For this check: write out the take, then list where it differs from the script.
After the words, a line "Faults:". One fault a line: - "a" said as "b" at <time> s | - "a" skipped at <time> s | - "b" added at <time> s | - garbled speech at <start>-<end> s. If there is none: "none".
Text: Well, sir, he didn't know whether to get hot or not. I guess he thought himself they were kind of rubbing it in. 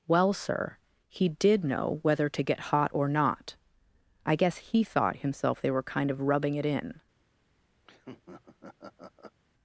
Well, sir, he did know whether to get hot or not. I guess he thought himself they were kind of rubbing it in.
Faults:
- "didn't" said as "did" at 1.3 s